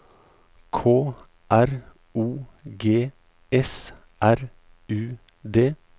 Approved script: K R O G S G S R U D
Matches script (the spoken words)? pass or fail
fail